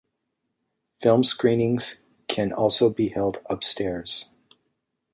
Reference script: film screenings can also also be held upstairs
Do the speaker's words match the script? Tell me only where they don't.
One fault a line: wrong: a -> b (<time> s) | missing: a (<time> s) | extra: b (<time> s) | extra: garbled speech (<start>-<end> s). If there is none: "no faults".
missing: also (2.9 s)